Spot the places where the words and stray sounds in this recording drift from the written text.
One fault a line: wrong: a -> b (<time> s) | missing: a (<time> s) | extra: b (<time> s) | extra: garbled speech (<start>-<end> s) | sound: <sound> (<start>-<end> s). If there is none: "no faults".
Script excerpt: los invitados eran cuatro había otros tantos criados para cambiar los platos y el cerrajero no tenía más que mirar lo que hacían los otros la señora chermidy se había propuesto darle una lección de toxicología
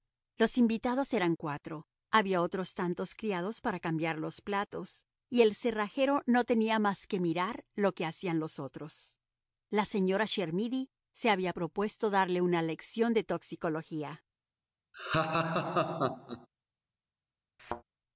sound: laugh (14.9-16.5 s)
sound: thud (17.6-17.8 s)